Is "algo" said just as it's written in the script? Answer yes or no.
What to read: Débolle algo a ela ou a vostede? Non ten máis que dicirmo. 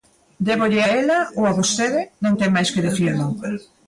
no